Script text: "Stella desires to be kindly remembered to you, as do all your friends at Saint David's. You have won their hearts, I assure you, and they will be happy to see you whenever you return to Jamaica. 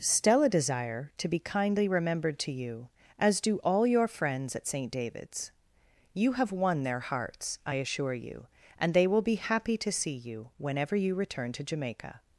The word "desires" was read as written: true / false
false